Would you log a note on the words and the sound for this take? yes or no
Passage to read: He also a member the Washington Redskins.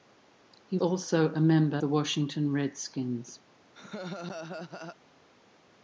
yes